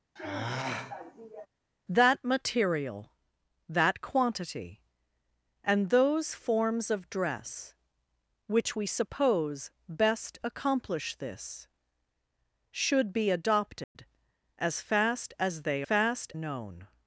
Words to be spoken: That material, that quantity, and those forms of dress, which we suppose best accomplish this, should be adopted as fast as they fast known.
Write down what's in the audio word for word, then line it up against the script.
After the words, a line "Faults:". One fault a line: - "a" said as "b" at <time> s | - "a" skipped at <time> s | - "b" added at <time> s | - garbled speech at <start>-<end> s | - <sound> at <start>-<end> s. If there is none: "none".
That material, that quantity, and those forms of dress, which we suppose best accomplish this, should be adopted as fast as they fast known.
Faults:
- sigh at 0.2-1.5 s
- dropout at 13.8-14.0 s